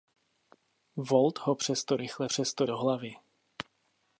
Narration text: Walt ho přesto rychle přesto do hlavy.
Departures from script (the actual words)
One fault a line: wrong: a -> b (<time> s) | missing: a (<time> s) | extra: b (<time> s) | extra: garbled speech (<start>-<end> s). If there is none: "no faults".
no faults